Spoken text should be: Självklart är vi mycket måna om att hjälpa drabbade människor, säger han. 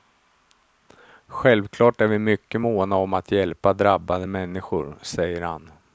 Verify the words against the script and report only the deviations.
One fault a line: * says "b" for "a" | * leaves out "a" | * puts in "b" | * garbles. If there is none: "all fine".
all fine